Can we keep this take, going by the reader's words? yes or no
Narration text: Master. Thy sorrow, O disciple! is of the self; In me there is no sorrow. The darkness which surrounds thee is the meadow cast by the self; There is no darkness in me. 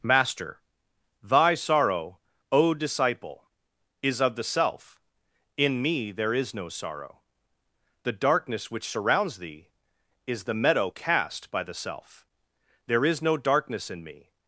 yes